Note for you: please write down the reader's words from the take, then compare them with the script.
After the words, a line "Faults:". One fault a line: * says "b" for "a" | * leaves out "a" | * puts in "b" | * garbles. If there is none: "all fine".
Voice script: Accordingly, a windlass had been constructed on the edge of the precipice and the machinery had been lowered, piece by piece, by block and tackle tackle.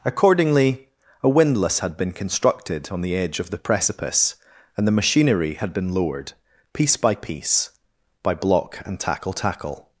Accordingly, a windlass had been constructed on the edge of the precipice and the machinery had been lowered, piece by piece, by block and tackle tackle.
Faults:
all fine